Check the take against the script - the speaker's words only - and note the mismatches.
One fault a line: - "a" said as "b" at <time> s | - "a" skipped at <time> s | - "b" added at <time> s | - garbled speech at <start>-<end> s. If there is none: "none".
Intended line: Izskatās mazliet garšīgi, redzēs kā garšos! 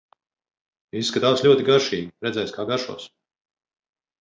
- "mazliet" said as "ļoti" at 1.5 s